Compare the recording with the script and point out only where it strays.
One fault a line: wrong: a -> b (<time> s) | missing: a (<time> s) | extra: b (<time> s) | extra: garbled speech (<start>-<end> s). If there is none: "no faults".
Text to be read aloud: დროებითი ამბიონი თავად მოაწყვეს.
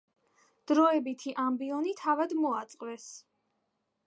no faults